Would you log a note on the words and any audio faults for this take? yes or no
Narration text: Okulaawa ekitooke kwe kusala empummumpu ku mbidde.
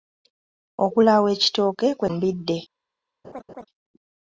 yes